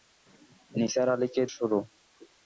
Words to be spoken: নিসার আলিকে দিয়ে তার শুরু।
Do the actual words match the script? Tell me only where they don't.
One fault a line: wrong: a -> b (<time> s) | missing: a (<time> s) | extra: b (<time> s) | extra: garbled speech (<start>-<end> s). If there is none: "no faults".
missing: দিয়ে তার (1.4 s)